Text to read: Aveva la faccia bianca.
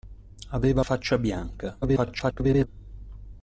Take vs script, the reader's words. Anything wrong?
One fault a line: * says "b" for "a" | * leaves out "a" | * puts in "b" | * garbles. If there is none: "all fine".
* leaves out "la"
* garbles